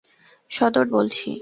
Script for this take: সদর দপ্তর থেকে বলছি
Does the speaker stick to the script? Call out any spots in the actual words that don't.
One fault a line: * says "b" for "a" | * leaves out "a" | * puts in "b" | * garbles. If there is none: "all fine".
* leaves out "দপ্তর থেকে"